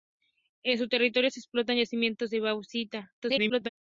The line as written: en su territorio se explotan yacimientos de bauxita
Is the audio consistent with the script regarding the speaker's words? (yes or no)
no